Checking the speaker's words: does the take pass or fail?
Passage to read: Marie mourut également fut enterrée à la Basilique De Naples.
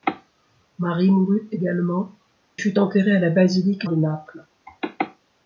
pass